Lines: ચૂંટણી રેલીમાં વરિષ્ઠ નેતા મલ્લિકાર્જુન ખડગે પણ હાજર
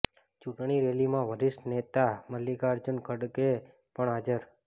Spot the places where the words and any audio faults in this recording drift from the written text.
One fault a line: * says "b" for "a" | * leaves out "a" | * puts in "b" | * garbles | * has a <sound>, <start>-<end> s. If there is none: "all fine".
all fine